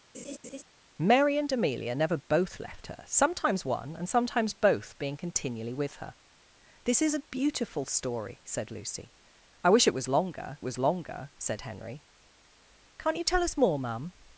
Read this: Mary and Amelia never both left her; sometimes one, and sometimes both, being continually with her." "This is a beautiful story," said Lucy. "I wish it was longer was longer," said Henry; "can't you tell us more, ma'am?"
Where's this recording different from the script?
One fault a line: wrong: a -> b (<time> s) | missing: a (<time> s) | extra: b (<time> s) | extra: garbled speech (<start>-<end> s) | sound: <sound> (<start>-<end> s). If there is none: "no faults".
sound: laugh (0.1-0.6 s)